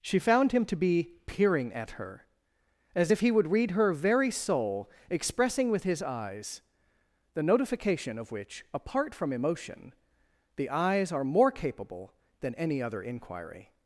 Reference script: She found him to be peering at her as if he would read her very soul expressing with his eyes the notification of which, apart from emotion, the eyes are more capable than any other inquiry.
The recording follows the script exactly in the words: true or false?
true